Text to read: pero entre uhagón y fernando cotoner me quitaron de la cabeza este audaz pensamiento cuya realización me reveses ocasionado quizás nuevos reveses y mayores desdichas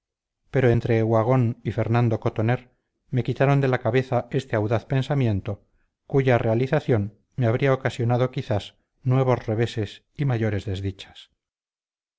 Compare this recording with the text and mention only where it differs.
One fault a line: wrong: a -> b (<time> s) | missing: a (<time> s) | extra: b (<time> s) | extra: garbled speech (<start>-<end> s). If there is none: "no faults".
wrong: reveses -> habría (7.5 s)